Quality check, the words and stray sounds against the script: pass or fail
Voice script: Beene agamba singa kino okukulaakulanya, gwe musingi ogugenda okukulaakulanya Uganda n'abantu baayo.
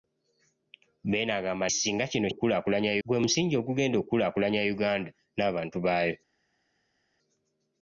pass